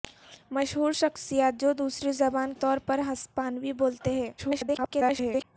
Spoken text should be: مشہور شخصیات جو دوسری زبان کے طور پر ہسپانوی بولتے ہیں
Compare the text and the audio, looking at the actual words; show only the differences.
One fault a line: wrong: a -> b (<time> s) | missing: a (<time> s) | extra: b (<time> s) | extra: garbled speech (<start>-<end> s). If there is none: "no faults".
missing: کے (2.5 s)
extra: garbled speech (4.4-5.4 s)